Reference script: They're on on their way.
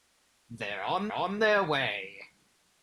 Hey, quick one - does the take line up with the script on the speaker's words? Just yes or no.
yes